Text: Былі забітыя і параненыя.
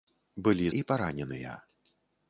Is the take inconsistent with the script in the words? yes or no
yes